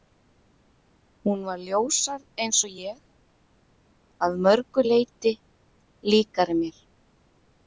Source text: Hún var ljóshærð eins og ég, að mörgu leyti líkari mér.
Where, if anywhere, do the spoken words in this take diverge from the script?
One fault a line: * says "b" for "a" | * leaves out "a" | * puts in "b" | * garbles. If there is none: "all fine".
all fine